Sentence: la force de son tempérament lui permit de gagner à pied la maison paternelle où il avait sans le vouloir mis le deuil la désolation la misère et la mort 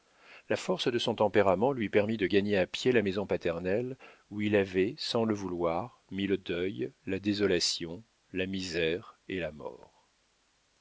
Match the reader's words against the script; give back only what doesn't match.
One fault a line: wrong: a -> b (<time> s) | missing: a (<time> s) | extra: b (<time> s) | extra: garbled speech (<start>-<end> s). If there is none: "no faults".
no faults